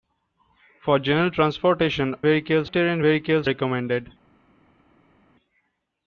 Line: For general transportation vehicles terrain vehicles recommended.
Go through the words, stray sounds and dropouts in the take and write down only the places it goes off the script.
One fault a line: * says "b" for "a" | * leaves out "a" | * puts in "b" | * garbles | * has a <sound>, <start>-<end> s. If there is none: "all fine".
all fine